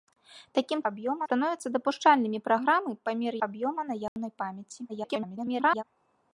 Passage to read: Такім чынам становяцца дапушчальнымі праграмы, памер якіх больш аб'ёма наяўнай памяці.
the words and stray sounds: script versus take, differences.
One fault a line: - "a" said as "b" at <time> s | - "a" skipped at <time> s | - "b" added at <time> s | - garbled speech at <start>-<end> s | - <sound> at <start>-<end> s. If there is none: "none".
- "чынам" said as "аб'ёма" at 0.9 s
- "якіх больш" skipped at 3.3 s
- dropout at 4.1-4.2 s
- garbled speech at 4.9-5.8 s